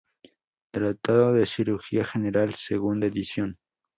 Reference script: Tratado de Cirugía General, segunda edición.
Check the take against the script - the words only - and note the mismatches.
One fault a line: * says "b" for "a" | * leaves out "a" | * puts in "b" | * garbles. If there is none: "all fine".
all fine